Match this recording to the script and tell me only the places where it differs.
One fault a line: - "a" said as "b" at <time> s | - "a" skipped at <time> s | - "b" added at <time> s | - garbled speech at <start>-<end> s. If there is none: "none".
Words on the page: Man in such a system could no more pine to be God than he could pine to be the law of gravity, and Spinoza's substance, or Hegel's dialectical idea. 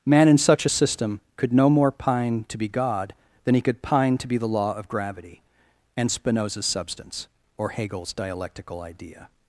none